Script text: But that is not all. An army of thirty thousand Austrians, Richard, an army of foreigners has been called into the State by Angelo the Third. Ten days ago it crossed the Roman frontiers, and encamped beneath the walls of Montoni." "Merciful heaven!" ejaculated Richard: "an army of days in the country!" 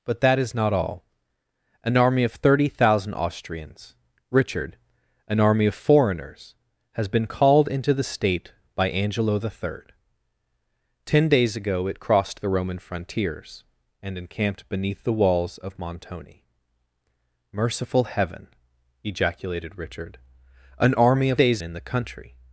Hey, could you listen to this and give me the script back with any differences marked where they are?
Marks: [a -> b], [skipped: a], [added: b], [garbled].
But that is not all. An army of thirty thousand Austrians, Richard, an army of foreigners has been called into the State by Angelo the Third. Ten days ago it crossed the Roman frontiers, and encamped beneath the walls of Montoni." "Merciful heaven!" ejaculated Richard: "an army of days in the country!"